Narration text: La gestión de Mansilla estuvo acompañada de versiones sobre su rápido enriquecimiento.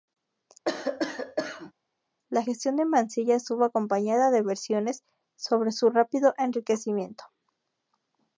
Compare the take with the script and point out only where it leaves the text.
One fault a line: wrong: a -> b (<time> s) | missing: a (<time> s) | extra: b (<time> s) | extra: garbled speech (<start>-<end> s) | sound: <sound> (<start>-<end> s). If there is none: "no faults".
sound: cough (0.7-1.7 s)